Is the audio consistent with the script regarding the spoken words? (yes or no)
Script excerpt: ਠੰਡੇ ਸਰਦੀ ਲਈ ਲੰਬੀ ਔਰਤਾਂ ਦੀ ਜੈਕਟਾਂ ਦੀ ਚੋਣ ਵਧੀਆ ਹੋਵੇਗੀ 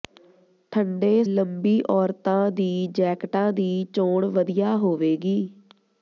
no